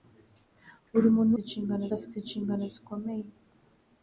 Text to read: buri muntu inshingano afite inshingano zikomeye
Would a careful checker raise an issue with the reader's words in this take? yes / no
no